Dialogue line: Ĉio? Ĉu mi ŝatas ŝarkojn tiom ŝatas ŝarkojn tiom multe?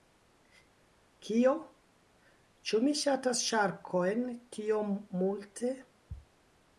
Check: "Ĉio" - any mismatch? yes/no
yes